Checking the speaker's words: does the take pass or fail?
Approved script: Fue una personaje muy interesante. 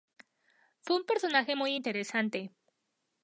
fail